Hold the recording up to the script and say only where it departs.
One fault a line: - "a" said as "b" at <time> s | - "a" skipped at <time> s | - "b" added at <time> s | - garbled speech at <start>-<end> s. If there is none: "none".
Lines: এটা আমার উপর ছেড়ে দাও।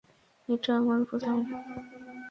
- "ছেড়ে" skipped at 1.2 s